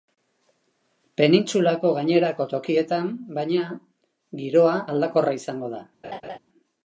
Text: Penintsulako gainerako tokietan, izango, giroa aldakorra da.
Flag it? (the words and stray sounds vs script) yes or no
yes